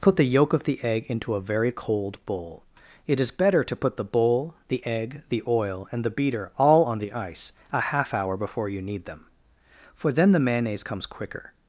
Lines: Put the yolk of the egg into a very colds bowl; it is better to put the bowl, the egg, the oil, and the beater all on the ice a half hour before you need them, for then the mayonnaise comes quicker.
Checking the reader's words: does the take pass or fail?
fail